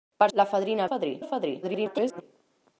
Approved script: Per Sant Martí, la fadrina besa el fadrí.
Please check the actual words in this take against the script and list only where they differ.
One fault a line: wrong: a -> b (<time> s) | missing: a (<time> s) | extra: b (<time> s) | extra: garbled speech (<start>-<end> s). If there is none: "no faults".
missing: Sant Martí (0.3 s)
wrong: besa -> fadrí (0.9 s)
extra: garbled speech (1.6-2.2 s)